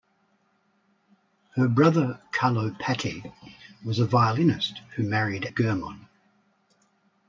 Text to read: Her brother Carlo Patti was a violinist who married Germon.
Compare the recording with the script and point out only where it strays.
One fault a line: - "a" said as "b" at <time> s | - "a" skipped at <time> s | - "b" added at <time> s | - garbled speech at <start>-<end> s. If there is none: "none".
none